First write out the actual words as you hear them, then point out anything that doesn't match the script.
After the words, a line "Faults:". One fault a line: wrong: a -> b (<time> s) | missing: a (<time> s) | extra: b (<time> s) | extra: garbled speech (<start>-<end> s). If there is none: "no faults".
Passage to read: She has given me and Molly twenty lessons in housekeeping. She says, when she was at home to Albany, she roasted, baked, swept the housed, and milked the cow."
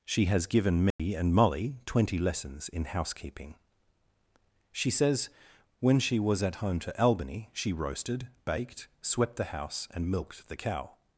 She has given me and Molly twenty lessons in housekeeping. She says, when she was at home to Albany, she roasted, baked, swept the house, and milked the cow."
Faults:
wrong: housed -> house (9.4 s)